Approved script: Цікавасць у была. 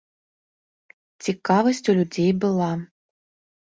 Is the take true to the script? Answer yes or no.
no